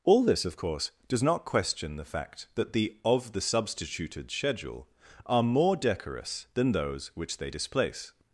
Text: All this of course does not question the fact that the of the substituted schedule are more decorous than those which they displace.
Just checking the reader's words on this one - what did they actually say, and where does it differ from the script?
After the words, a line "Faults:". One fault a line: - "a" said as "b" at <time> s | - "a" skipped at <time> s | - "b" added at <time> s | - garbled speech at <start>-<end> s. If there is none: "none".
All this of course does not question the fact that the of the substituted schedule are more decorous than those which they displace.
Faults:
none